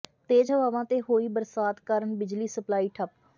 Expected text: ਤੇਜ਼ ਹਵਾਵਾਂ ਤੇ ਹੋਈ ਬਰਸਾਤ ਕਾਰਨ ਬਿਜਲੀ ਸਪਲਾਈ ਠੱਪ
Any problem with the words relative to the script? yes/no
no